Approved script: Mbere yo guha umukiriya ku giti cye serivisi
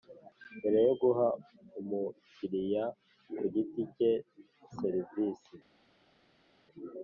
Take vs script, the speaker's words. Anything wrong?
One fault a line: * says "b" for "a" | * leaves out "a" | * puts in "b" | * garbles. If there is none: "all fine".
all fine